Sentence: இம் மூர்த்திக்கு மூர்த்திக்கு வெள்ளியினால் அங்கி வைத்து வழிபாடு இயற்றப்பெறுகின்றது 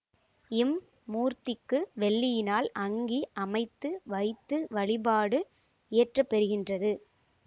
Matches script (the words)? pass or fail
fail